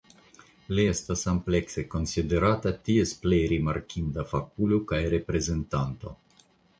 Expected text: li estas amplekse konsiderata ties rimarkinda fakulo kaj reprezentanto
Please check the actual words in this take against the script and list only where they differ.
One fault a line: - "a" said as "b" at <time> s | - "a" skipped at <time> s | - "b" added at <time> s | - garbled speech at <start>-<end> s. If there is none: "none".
- "plej" added at 3.3 s